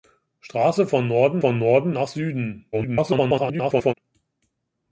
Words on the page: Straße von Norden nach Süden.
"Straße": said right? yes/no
yes